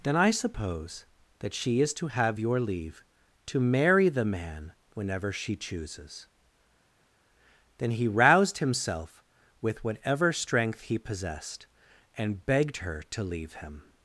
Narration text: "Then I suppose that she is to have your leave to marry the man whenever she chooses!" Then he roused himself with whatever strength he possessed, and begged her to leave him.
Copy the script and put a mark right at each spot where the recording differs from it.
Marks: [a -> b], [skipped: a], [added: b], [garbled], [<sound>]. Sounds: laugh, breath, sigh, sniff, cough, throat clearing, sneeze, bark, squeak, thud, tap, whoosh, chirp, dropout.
"Then I suppose that she is to have your leave to marry the man whenever she chooses!" Then he roused himself with whatever strength he possessed, and begged her to leave him.